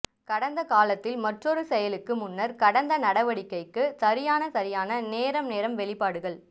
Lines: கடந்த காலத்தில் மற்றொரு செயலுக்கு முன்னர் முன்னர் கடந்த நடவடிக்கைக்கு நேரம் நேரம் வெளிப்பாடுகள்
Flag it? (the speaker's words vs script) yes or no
yes